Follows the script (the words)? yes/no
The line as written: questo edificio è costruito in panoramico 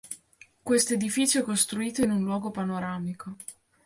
no